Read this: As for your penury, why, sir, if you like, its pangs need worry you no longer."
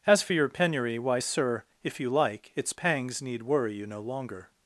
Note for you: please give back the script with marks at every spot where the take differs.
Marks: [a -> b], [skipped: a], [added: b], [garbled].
As for your penury, why, sir, if you like, its pangs need worry you no longer."